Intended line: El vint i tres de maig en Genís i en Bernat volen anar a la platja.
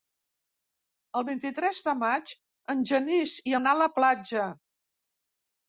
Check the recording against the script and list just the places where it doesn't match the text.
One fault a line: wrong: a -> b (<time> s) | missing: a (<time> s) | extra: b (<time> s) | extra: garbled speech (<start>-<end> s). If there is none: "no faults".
missing: en Bernat volen (3.5 s)